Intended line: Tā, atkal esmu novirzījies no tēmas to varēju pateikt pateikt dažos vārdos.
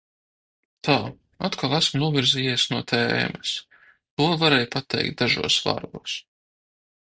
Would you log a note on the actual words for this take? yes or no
yes